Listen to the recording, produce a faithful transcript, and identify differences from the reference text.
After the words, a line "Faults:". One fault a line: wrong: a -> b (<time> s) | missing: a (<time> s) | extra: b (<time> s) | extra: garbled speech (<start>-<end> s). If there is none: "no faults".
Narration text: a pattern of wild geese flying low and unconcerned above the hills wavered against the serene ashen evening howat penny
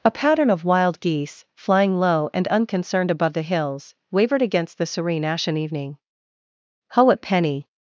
a pattern of wild geese flying low and unconcerned above the hills wavered against the serene ashen evening howat penny
Faults:
no faults